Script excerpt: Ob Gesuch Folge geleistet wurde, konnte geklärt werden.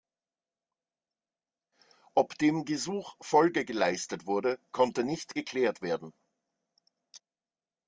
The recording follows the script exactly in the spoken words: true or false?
false